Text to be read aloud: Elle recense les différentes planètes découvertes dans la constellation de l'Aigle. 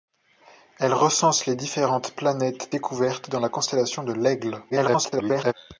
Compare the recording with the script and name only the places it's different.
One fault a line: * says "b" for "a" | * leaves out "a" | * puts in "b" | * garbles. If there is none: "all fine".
* garbles